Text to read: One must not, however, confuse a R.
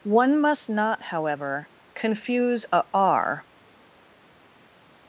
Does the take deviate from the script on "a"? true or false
false